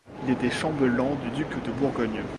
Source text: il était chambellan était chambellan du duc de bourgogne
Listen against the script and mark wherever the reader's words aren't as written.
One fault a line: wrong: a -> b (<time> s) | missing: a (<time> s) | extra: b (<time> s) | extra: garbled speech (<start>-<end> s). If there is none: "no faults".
missing: était chambellan (1.1 s)